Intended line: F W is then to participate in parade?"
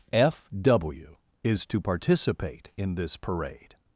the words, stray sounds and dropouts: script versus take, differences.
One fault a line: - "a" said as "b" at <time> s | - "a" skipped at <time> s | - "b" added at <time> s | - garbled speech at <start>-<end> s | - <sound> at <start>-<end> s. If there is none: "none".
- "then" skipped at 1.6 s
- "this" added at 2.9 s